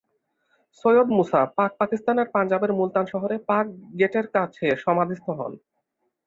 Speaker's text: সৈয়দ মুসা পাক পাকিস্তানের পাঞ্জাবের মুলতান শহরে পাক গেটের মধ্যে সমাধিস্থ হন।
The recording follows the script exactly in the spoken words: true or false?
false